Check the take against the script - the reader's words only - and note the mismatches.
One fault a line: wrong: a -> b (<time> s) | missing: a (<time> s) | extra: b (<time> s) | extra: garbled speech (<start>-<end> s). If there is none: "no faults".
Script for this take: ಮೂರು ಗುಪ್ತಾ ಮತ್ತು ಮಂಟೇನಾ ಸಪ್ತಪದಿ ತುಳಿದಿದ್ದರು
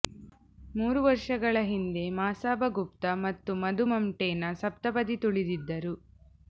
extra: ವರ್ಷಗಳ ಹಿಂದೆ ಮಸಾಬಾ (1.0 s)
extra: ಮಧು (3.6 s)